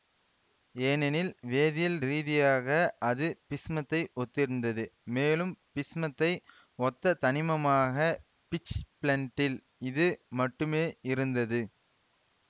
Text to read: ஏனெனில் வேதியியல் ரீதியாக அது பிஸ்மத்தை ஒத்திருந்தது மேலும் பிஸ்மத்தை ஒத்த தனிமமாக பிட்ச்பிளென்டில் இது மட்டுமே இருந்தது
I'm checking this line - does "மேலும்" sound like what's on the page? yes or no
yes